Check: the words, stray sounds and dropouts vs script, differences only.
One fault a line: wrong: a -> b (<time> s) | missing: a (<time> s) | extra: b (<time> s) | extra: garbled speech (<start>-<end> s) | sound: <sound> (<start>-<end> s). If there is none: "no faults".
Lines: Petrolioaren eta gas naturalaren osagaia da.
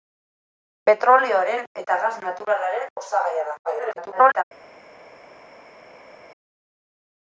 extra: garbled speech (3.6-4.4 s)